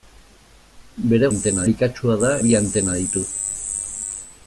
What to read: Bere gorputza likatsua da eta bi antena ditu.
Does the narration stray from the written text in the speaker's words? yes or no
yes